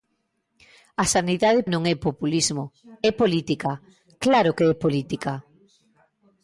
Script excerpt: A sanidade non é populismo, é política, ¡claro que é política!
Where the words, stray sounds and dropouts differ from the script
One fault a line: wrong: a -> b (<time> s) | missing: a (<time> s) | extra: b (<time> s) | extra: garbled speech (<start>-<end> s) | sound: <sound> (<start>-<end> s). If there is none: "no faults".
no faults